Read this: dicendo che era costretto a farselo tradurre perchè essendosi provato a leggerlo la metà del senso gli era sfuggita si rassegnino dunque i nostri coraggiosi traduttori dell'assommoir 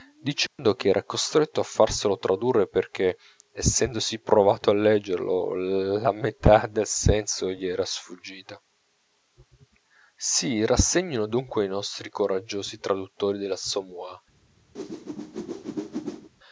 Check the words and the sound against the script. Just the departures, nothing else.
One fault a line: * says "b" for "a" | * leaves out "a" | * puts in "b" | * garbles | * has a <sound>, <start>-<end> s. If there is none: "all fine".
* has a dropout, 0.5-0.6 s
* has a whoosh, 14.7-16.3 s